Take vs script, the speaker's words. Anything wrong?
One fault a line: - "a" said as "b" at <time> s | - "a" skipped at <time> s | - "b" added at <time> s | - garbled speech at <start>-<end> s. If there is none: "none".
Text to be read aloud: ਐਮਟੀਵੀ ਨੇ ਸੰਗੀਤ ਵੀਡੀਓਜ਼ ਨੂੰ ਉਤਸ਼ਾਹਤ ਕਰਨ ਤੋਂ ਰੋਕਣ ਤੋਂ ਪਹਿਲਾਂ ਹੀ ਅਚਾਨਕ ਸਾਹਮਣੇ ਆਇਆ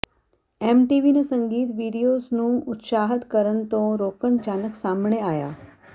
- "ਤੋਂ ਪਹਿਲਾਂ ਹੀ" skipped at 4.4 s